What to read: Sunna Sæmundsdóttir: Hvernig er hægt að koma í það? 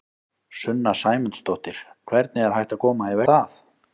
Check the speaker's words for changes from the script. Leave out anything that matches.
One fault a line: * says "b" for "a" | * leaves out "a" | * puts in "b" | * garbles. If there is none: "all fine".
all fine